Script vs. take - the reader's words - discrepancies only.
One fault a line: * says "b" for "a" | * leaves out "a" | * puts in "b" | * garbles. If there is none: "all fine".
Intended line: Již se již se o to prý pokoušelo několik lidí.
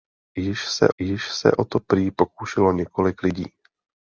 all fine